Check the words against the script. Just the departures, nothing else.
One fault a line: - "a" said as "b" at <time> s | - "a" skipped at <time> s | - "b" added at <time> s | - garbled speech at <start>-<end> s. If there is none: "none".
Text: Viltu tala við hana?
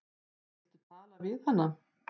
none